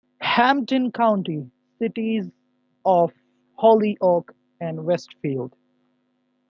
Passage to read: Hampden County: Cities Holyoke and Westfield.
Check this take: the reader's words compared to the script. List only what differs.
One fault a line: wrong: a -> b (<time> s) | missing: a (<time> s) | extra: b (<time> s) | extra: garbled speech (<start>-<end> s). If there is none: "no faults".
extra: of (2.9 s)